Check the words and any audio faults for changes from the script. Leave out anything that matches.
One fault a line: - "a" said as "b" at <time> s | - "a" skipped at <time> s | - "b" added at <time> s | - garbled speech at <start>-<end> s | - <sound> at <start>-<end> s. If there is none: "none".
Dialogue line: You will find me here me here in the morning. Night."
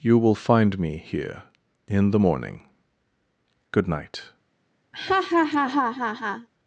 - "me here" skipped at 1.4 s
- "Good" added at 3.7 s
- laugh at 4.9-6.5 s